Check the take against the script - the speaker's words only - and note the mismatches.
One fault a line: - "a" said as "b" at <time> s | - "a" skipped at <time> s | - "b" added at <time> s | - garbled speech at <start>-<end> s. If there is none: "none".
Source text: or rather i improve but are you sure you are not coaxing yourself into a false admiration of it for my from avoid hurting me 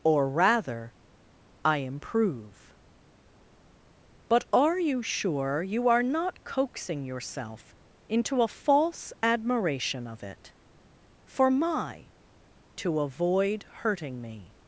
- "from" said as "to" at 12.8 s